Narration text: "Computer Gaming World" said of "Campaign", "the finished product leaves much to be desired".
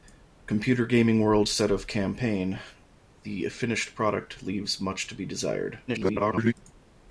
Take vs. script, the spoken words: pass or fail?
fail